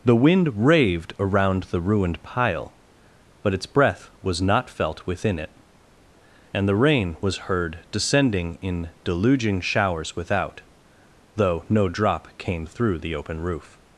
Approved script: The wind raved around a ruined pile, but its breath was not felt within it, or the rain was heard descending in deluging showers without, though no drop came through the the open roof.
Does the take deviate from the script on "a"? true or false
true